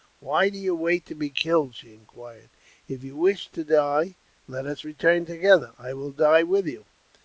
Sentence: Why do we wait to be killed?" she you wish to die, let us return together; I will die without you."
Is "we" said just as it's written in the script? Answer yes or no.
no